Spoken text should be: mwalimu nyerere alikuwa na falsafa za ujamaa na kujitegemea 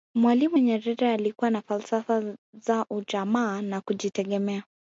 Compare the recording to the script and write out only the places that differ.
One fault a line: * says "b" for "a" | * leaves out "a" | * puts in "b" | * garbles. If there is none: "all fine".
all fine